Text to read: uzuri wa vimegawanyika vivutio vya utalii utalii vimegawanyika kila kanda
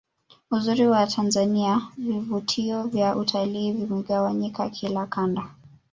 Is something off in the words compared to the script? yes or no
yes